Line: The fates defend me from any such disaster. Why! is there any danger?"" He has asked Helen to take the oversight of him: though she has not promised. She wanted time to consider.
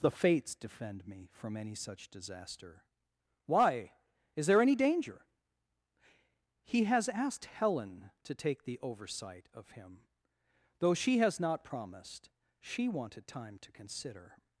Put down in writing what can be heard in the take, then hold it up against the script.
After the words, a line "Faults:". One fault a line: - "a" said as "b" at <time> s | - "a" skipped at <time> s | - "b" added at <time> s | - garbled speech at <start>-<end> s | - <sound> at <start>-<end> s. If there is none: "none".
The fates defend me from any such disaster. Why! is there any danger?"" He has asked Helen to take the oversight of him: though she has not promised. She wanted time to consider.
Faults:
none